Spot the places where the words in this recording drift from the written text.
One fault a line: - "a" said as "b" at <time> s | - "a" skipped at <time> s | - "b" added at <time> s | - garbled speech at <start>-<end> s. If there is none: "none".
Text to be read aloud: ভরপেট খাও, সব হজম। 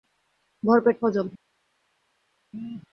- "খাও সব" skipped at 1.0 s